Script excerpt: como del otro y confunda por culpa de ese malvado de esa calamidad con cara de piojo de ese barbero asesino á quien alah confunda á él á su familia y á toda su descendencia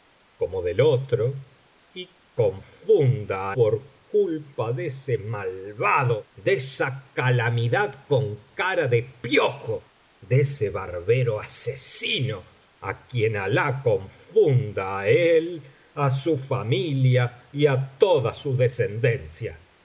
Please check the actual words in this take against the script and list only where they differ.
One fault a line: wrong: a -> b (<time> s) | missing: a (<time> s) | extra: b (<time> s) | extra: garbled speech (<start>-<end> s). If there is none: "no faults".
no faults